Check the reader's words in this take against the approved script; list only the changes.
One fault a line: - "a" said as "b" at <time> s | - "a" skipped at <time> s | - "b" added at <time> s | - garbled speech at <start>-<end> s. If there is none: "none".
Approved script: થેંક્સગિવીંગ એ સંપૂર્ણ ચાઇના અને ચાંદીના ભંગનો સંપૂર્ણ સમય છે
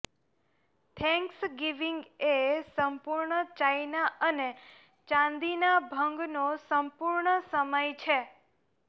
none